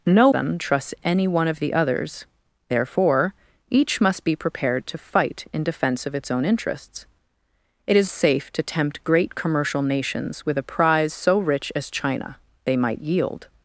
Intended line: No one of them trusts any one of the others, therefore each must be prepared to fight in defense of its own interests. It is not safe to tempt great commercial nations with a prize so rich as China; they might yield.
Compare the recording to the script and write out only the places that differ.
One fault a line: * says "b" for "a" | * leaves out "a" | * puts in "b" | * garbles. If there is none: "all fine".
* leaves out "one of"
* leaves out "not"